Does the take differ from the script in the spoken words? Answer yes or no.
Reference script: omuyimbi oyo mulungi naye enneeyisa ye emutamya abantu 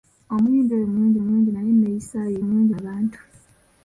yes